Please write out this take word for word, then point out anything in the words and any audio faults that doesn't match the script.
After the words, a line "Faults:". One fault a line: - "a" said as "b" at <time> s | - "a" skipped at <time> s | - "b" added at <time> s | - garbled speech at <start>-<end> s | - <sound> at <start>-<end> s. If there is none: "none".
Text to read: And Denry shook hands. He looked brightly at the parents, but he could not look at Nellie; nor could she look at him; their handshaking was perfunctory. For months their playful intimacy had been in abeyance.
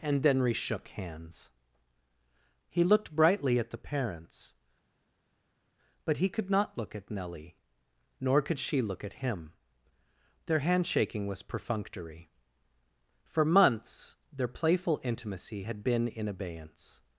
And Denry shook hands. He looked brightly at the parents, but he could not look at Nellie; nor could she look at him; their handshaking was perfunctory. For months their playful intimacy had been in abeyance.
Faults:
none